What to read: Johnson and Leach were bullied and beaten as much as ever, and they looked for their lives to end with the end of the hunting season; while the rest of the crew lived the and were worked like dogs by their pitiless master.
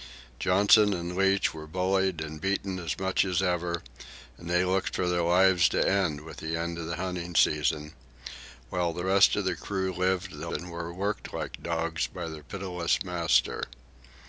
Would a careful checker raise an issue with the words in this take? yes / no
no